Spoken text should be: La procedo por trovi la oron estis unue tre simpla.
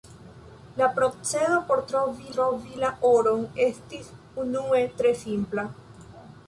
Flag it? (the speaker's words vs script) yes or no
yes